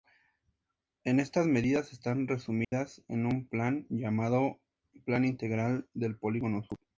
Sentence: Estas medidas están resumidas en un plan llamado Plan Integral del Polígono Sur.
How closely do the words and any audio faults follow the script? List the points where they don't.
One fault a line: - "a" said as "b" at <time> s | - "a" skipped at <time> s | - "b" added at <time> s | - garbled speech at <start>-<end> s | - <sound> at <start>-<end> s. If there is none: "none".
- dropout at 2.6-2.7 s